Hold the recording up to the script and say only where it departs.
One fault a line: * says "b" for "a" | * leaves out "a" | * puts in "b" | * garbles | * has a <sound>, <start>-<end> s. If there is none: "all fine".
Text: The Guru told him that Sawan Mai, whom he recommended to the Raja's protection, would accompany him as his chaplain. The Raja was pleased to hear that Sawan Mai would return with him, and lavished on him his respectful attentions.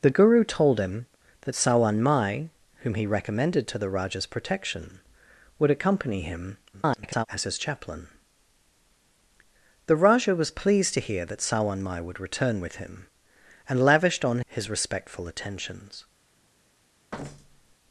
* garbles
* leaves out "him"
* has a thud, 17.1-17.8 s